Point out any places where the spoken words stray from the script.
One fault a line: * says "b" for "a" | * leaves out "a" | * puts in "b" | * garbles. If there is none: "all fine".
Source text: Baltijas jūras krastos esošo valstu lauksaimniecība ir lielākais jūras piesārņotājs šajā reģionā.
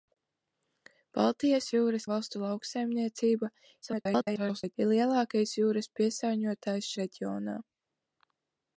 * leaves out "krastos esošo"
* garbles
* leaves out "šajā"